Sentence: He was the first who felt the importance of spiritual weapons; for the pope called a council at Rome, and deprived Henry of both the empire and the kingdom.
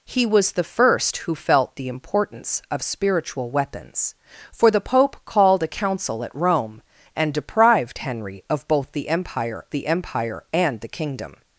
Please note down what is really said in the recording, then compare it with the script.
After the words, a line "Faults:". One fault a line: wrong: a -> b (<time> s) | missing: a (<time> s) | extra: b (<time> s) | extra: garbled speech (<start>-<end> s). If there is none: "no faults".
He was the first who felt the importance of spiritual weapons; for the pope called a council at Rome, and deprived Henry of both the empire the empire and the kingdom.
Faults:
extra: the empire (9.7 s)